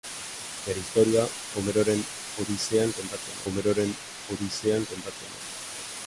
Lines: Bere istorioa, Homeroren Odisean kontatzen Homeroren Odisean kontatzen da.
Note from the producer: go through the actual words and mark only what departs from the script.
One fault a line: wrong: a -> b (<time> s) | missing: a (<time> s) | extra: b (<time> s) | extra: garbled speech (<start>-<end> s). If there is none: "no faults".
no faults